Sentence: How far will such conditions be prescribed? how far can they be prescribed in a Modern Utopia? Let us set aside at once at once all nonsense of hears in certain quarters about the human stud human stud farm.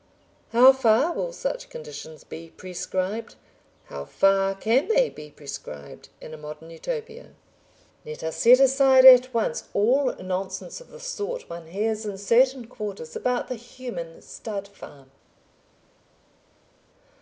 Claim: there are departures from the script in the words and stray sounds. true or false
true